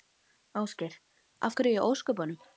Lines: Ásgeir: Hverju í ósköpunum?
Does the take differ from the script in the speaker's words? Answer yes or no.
yes